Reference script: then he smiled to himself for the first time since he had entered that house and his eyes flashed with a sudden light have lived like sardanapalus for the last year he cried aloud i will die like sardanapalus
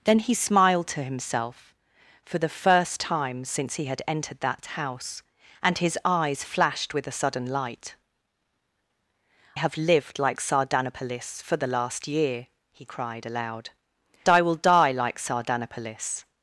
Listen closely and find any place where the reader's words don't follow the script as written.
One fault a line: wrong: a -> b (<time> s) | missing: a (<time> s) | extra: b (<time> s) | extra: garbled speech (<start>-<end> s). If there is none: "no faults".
no faults